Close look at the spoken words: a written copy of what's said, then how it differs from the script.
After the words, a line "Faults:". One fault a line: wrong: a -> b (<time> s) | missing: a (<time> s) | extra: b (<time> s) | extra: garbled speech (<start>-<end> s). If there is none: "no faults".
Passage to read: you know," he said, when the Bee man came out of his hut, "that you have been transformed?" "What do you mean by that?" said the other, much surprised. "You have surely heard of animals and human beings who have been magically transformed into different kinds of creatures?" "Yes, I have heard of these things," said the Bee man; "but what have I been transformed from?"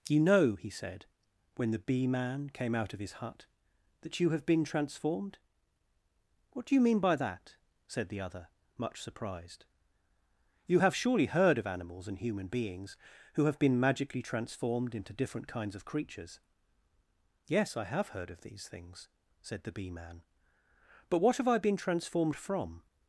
you know," he said, when the Bee man came out of his hut, "that you have been transformed?" "What do you mean by that?" said the other, much surprised. "You have surely heard of animals and human beings who have been magically transformed into different kinds of creatures?" "Yes, I have heard of these things," said the Bee man; "but what have I been transformed from?"
Faults:
no faults